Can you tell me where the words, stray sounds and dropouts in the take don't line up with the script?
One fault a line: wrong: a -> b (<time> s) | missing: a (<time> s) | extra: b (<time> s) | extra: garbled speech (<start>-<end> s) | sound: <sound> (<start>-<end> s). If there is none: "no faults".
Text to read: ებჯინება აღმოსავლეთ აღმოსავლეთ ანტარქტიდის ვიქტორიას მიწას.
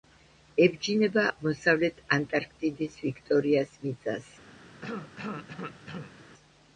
missing: აღმოსავლეთ (2.0 s)
sound: cough (4.8-6.1 s)